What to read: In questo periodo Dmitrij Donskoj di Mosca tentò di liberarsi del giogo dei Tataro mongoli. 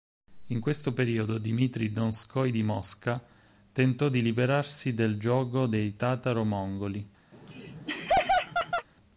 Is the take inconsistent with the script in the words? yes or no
no